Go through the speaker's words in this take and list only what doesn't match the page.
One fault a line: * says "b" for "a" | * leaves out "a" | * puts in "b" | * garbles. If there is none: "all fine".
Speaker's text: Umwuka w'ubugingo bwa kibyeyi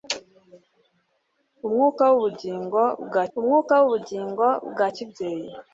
* puts in "umwuka w'ubugingo bwa"